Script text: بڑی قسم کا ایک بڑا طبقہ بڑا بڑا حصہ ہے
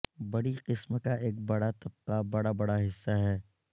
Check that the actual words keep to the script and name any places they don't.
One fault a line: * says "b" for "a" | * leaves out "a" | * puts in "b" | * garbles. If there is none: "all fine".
all fine